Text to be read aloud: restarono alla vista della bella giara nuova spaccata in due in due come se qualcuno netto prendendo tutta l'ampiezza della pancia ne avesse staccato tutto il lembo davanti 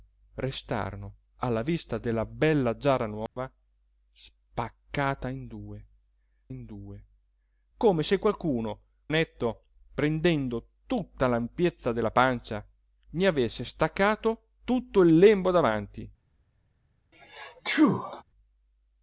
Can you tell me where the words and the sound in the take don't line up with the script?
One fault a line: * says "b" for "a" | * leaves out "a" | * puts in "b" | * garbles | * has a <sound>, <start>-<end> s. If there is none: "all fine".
* has a dropout, 3.3-3.4 s
* has a sneeze, 17.1-18.2 s